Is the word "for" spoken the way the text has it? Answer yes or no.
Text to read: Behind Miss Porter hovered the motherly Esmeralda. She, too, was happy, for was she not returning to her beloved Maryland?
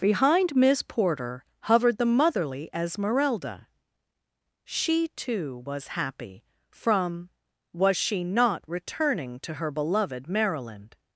no